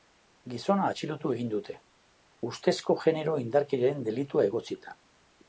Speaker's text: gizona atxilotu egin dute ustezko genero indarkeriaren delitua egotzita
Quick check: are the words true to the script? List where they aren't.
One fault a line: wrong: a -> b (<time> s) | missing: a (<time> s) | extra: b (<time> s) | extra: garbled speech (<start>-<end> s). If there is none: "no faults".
no faults